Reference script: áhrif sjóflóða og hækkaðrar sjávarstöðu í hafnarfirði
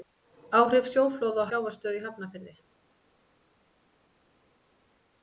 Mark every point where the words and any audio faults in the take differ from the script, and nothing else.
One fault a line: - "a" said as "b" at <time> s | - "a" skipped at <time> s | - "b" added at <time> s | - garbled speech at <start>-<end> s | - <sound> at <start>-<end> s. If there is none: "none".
- "hækkaðrar" skipped at 1.5 s